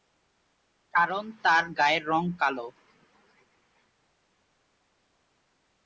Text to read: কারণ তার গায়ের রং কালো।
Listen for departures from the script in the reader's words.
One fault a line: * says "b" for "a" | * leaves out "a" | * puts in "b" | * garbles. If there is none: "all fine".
all fine